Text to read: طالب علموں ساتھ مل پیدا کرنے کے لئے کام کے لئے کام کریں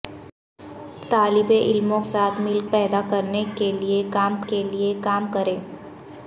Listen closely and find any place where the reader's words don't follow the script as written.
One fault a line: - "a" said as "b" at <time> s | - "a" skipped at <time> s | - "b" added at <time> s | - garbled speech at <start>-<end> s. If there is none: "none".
none